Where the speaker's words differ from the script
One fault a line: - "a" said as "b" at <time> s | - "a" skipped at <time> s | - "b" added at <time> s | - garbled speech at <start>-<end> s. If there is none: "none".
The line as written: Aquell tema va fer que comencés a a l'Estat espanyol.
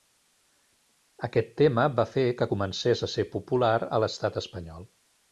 - "Aquell" said as "Aquest" at 1.3 s
- "ser popular" added at 3.1 s